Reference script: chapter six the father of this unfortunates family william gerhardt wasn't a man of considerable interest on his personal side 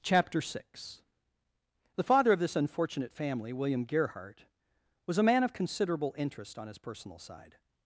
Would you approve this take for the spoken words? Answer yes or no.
no